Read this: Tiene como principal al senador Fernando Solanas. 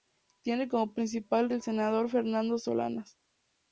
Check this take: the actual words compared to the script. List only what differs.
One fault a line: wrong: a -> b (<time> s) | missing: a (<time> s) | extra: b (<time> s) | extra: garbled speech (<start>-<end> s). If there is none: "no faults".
no faults